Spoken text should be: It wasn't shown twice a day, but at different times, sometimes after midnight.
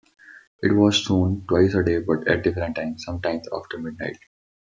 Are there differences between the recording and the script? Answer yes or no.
yes